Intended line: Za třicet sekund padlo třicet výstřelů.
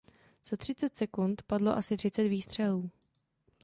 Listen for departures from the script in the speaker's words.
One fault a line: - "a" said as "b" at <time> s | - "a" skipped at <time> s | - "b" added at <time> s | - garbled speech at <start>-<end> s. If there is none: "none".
- "asi" added at 1.8 s